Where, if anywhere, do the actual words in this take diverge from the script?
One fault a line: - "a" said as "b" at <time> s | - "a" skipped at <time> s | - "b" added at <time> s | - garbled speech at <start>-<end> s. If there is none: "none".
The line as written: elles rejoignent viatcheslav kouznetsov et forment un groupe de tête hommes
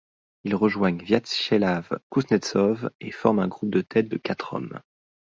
- "elles" said as "ils" at 0.5 s
- "de quatre" added at 4.1 s